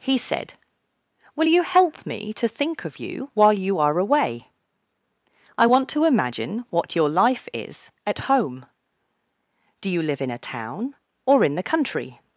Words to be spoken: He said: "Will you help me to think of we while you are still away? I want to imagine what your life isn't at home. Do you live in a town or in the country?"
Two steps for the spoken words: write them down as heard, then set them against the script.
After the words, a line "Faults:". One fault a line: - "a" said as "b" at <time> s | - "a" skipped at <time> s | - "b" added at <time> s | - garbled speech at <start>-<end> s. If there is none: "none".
He said: "Will you help me to think of you while you are away? I want to imagine what your life is at home. Do you live in a town or in the country?"
Faults:
- "we" said as "you" at 3.0 s
- "still" skipped at 4.0 s
- "isn't" said as "is" at 7.5 s